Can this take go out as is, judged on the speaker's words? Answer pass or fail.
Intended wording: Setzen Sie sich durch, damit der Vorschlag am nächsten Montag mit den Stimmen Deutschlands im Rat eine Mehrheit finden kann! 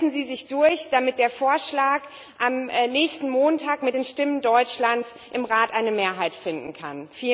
pass